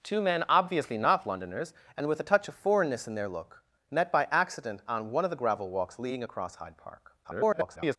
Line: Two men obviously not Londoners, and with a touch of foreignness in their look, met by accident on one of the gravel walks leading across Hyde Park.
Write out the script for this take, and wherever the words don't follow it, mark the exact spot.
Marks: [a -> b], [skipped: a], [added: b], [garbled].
Two men obviously not Londoners, and with a touch of foreignness in their look, met by accident on one of the gravel walks leading across Hyde Park. [garbled]